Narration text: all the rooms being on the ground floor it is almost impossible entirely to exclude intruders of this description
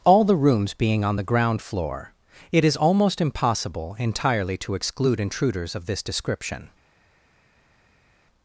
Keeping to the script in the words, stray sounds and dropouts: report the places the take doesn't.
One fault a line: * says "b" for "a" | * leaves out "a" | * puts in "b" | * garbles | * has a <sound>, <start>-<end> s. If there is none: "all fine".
all fine